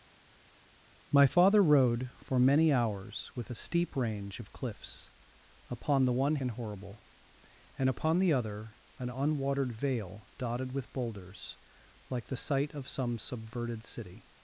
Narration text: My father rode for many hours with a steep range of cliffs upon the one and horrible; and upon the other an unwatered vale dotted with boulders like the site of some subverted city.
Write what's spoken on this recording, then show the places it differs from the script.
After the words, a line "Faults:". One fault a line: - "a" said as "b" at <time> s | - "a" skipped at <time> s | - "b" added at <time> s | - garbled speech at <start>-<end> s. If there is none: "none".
My father rode for many hours with a steep range of cliffs upon the one and horrible; and upon the other an unwatered vale dotted with boulders like the site of some subverted city.
Faults:
none